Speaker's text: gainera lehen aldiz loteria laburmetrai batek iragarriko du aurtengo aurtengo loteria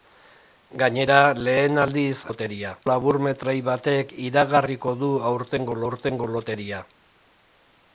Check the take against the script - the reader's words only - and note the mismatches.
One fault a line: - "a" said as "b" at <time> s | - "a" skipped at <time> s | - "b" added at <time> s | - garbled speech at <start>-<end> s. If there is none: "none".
none